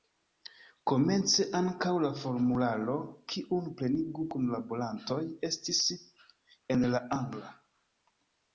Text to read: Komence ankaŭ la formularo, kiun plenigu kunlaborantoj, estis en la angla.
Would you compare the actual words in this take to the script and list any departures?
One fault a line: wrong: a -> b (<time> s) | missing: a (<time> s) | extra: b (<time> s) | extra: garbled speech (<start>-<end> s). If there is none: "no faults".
no faults